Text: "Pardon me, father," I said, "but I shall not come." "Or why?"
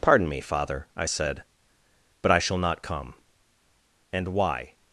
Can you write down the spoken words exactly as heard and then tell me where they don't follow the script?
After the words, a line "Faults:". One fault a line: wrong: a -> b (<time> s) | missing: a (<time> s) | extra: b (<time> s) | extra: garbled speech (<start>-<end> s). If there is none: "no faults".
"Pardon me, father," I said, "but I shall not come." "And why?"
Faults:
wrong: Or -> And (4.1 s)